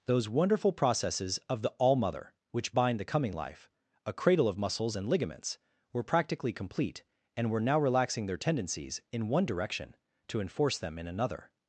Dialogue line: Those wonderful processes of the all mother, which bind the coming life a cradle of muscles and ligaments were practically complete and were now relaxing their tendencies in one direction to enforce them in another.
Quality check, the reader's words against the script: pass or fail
pass